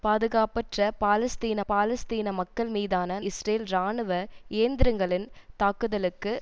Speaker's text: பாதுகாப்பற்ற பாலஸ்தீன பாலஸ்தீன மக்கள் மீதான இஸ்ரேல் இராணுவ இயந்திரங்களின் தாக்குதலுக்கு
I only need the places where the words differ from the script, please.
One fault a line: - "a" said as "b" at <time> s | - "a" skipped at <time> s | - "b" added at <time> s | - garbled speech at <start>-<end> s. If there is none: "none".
none